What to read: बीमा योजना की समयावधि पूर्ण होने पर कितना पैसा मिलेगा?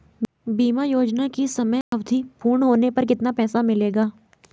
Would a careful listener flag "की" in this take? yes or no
no